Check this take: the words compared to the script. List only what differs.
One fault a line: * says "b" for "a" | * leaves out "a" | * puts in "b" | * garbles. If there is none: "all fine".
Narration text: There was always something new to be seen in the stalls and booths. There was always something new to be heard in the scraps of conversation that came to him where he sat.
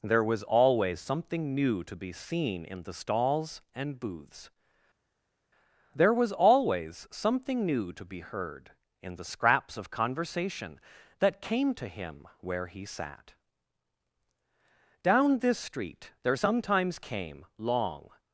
* puts in "Down this street there sometimes came long"